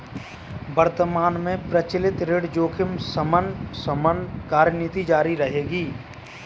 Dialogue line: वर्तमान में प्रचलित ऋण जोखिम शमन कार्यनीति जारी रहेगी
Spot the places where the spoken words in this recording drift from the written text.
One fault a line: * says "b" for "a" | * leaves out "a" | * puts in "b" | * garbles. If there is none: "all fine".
* puts in "शमन"